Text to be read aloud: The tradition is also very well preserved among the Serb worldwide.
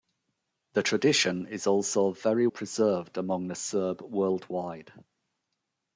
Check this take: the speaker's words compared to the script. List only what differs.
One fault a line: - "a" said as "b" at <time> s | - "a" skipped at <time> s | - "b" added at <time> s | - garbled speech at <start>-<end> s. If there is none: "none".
- "well" skipped at 2.5 s